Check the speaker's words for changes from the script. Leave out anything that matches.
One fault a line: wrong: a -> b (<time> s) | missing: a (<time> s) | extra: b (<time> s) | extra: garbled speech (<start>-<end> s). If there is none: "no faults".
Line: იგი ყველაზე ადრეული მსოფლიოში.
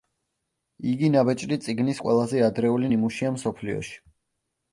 extra: ნაბეჭდი წიგნის (1.1 s)
extra: ნიმუშია (2.9 s)